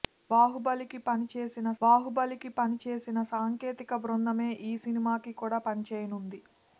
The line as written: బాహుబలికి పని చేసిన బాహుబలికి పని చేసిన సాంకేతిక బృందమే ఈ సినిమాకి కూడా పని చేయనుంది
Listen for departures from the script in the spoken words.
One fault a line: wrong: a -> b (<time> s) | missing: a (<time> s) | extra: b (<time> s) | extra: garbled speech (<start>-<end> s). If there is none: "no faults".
no faults